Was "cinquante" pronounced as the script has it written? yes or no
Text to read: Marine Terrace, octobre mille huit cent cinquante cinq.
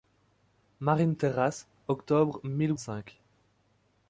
no